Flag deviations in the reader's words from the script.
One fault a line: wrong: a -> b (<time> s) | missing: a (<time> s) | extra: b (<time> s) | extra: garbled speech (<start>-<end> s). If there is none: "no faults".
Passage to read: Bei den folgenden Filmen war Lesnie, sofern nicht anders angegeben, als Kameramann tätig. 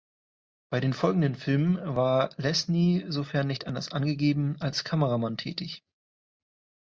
no faults